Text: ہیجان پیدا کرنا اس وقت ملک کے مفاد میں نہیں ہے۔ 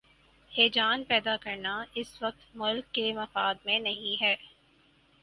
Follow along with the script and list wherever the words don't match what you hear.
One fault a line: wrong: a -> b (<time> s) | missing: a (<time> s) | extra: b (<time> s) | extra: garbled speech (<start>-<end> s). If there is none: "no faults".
no faults